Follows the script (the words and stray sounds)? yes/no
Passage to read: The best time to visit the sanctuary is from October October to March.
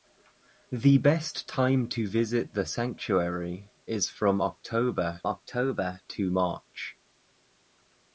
yes